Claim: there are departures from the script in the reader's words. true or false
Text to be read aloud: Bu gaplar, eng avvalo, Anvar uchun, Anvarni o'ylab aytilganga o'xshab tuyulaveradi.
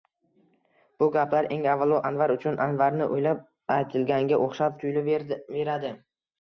false